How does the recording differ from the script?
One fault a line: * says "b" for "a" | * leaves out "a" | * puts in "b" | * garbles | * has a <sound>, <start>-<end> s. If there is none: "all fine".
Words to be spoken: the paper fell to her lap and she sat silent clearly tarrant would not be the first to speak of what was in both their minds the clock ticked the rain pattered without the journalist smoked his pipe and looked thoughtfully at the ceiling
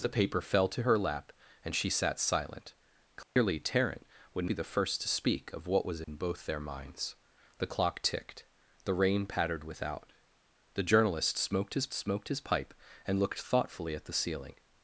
* has a dropout, 3.2-3.4 s
* leaves out "not"
* has a dropout, 6.0-6.1 s
* puts in "smoked his"